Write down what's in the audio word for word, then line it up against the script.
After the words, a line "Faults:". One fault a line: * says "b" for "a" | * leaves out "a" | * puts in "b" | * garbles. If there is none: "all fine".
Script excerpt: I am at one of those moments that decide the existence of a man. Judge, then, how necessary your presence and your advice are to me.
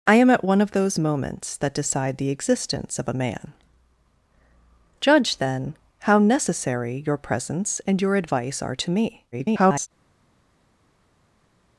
I am at one of those moments that decide the existence of a man. Judge, then, how necessary your presence and your advice are to me. [garbled]
Faults:
* garbles